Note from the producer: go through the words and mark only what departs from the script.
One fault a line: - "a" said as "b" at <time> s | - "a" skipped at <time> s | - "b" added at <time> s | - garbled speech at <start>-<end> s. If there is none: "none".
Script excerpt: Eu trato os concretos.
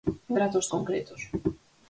none